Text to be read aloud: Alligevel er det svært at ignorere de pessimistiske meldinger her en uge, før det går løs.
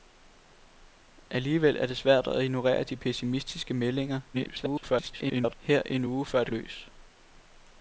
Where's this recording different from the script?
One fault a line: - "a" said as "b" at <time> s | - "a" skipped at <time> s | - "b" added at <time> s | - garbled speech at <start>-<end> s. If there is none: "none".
- garbled speech at 4.3-5.5 s
- "går" skipped at 6.5 s